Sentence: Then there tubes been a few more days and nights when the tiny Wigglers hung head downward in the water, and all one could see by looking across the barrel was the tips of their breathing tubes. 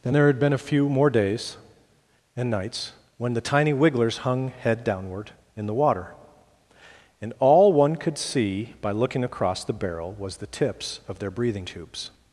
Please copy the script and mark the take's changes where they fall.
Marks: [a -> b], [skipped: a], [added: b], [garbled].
Then there [tubes -> had] been a few more days and nights when the tiny Wigglers hung head downward in the water, and all one could see by looking across the barrel was the tips of their breathing tubes.